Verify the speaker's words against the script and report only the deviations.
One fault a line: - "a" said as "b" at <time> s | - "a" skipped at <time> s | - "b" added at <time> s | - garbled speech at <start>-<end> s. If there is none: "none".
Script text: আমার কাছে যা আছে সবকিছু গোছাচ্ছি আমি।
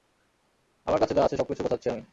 none